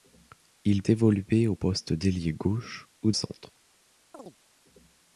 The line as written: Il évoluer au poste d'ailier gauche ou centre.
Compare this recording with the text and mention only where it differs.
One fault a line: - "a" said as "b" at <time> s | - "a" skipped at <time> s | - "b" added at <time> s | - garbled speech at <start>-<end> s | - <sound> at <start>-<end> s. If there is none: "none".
- chirp at 4.1-4.4 s